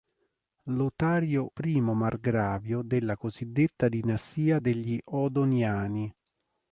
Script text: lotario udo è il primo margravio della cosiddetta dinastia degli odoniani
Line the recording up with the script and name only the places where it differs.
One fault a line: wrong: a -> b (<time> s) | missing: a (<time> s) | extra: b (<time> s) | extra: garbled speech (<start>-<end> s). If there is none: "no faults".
missing: udo è il (1.5 s)